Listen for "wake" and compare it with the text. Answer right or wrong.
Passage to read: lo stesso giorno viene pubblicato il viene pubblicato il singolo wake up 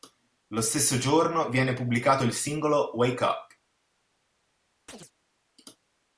right